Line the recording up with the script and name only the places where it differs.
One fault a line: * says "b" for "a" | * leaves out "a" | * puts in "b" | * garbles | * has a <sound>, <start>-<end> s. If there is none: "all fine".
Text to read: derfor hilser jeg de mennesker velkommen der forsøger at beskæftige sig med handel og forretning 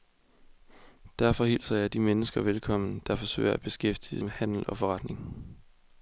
* leaves out "sig"